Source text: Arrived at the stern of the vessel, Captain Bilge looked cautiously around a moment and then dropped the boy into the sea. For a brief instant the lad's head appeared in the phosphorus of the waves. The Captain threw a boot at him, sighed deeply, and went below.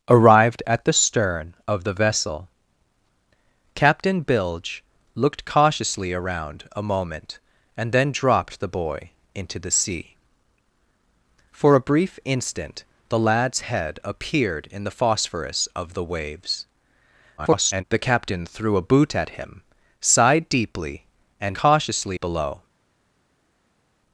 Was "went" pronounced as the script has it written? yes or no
no